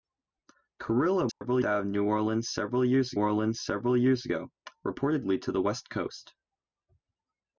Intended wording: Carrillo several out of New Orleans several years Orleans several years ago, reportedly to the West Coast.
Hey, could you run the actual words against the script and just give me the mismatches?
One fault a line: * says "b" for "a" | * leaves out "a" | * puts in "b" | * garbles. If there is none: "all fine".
all fine